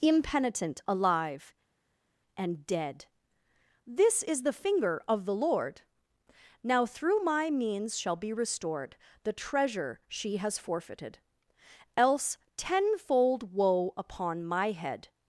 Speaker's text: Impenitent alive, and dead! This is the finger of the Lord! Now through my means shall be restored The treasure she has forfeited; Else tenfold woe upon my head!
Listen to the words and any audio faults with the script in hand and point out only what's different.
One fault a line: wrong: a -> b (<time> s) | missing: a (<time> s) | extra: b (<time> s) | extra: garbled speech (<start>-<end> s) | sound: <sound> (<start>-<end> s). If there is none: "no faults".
no faults